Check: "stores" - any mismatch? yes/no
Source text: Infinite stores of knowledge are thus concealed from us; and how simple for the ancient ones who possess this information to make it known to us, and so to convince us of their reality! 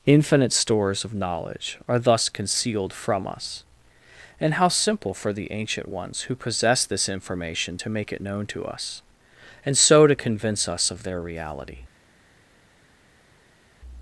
no